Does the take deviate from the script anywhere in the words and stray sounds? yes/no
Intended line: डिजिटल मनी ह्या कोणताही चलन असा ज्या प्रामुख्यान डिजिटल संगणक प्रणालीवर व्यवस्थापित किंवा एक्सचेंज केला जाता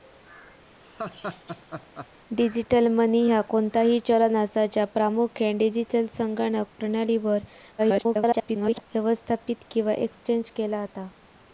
yes